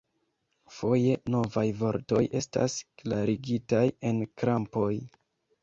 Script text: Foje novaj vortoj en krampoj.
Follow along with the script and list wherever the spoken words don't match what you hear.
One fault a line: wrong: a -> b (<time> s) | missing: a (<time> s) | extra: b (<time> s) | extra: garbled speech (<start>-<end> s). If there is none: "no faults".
extra: estas klarigitaj (2.4 s)